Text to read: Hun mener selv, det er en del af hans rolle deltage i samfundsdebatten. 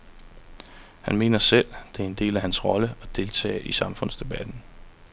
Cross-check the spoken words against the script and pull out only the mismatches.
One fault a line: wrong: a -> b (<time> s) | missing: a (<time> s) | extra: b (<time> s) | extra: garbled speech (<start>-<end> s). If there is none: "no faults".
wrong: Hun -> Han (1.0 s)
extra: at (3.0 s)